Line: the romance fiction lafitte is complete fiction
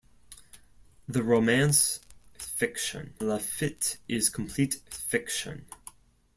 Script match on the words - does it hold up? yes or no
yes